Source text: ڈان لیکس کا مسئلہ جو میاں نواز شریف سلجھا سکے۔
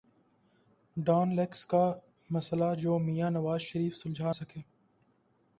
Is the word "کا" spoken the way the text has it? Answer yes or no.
yes